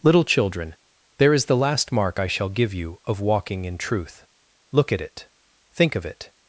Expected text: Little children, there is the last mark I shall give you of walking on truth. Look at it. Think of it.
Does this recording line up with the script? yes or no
no